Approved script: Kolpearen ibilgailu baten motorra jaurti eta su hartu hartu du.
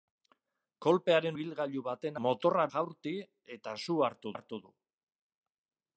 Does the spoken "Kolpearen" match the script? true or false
true